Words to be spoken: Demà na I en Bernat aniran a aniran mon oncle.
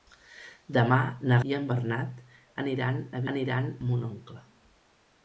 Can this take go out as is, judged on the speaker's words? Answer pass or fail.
pass